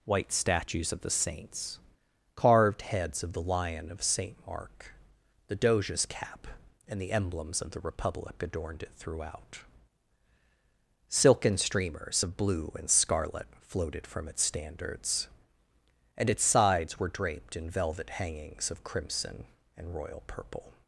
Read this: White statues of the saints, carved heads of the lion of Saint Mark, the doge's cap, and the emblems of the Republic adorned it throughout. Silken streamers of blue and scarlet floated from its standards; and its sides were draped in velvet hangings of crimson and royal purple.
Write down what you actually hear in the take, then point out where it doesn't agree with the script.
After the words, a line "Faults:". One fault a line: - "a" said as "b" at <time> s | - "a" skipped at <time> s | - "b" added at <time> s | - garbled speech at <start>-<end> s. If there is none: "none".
White statues of the saints, carved heads of the lion of Saint Mark, the doge's cap, and the emblems of the Republic adorned it throughout. Silken streamers of blue and scarlet floated from its standards; and its sides were draped in velvet hangings of crimson and royal purple.
Faults:
none